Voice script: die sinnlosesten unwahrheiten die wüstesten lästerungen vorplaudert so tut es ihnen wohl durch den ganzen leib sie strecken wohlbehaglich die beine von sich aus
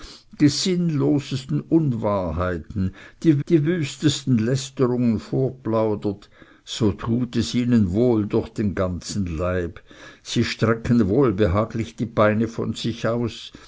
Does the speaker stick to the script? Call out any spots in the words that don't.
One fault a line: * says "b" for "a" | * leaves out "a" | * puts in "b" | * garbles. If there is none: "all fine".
* puts in "die"